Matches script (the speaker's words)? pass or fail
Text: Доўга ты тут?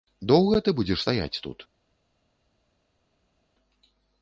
fail